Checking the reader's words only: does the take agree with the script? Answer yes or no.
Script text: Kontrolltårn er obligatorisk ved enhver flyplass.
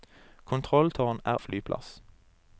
no